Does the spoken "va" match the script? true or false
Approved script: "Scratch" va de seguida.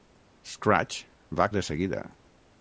true